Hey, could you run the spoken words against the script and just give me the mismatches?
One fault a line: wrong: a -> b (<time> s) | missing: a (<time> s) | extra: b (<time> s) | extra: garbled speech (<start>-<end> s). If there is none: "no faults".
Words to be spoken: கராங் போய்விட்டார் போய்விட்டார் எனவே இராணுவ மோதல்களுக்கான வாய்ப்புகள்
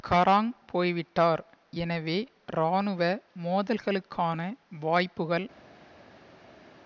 missing: போய்விட்டார் (1.4 s)